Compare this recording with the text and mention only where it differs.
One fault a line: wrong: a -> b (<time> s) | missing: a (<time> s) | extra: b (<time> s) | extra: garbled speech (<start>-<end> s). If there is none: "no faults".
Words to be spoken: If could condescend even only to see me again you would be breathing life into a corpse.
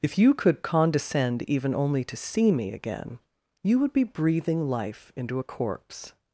extra: you (0.2 s)